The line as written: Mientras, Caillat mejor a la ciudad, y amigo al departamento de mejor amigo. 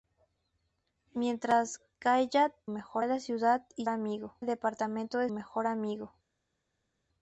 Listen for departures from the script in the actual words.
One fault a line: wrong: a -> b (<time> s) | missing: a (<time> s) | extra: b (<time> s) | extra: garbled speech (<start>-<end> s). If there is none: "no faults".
no faults